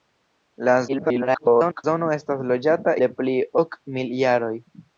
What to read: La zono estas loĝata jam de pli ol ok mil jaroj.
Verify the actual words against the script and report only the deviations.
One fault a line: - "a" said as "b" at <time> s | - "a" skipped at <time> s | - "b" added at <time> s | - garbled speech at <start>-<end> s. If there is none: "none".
- garbled speech at 0.9-1.8 s
- "jam" skipped at 3.0 s
- "ol" skipped at 3.4 s